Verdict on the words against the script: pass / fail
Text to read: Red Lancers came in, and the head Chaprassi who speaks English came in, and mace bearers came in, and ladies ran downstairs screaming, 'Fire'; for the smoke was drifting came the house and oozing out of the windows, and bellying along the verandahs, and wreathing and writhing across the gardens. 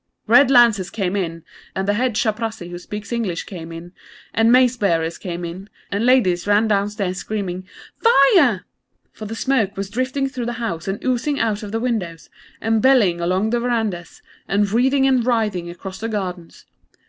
fail